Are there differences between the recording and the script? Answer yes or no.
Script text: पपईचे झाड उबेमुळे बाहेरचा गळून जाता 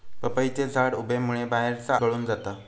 no